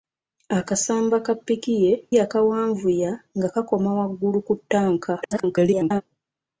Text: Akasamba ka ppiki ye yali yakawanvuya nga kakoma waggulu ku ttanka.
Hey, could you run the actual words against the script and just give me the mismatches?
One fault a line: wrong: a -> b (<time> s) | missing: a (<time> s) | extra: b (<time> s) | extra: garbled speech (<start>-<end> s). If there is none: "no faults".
missing: yali (1.9 s)
extra: garbled speech (5.2-6.0 s)